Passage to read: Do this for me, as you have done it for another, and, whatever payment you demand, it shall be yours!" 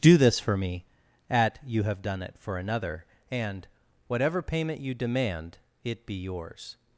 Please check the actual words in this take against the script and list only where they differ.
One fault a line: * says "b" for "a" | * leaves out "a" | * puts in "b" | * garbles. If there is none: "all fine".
* says "at" for "as"
* leaves out "shall"